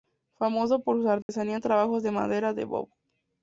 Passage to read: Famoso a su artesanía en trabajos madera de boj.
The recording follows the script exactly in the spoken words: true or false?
false